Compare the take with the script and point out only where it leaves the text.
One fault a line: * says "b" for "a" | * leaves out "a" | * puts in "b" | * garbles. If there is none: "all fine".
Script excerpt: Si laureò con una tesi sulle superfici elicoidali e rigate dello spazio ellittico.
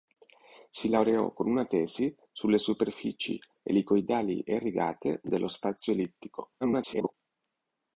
* garbles